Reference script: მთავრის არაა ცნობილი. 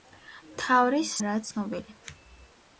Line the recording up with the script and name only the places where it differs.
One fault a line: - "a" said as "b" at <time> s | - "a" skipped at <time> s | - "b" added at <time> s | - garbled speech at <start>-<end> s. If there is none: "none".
none